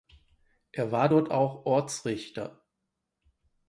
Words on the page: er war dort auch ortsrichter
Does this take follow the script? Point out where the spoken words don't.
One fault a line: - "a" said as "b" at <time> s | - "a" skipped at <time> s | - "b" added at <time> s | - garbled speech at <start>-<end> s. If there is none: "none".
none